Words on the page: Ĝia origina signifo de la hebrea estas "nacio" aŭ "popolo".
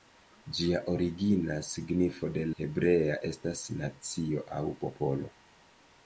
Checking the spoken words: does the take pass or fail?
fail